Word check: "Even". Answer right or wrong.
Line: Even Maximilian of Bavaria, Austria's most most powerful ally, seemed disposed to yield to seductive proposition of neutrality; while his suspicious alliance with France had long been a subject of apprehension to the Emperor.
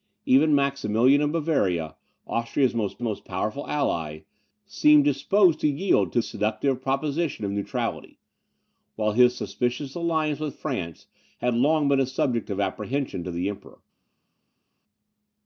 right